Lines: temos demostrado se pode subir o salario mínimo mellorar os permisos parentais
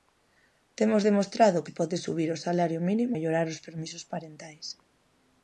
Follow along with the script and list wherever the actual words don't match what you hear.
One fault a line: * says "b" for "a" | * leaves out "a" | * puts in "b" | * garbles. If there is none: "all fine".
all fine